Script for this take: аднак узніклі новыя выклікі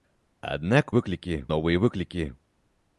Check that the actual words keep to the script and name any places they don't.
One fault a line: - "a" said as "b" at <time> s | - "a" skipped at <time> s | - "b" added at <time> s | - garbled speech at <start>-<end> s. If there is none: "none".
- "узніклі" said as "выклікі" at 1.0 s